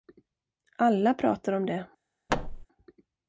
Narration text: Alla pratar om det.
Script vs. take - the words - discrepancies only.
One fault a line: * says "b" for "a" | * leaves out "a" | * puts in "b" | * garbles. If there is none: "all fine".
all fine